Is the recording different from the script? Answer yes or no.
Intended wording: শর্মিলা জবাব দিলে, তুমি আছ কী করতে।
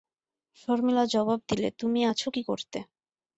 no